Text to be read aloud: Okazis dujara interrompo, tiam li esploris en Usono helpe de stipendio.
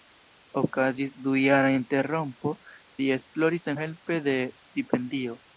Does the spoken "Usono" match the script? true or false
false